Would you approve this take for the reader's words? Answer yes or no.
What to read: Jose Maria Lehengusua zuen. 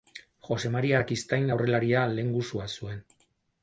no